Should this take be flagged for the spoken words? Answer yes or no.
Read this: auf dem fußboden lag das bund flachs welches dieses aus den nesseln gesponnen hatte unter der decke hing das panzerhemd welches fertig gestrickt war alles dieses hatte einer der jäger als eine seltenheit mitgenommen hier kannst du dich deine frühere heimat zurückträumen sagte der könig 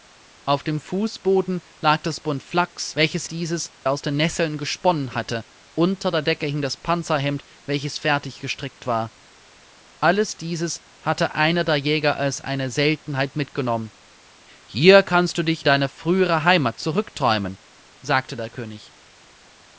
no